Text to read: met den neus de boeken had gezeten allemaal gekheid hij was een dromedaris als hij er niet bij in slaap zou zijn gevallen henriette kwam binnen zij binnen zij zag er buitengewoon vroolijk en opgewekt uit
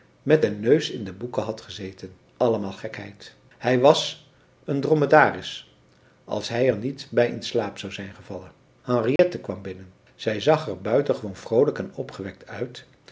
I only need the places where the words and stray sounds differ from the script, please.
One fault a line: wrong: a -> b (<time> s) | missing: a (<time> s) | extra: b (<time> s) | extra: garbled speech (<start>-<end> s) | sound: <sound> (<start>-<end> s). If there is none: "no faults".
extra: in (0.9 s)
sound: dropout (9.2-9.2 s)
missing: binnen zij (10.4 s)